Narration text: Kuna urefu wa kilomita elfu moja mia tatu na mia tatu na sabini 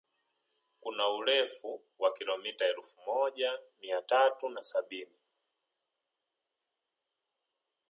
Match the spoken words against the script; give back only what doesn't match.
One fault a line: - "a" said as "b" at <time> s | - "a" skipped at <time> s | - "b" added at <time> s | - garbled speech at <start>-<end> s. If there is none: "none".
- "mia tatu na" skipped at 4.6 s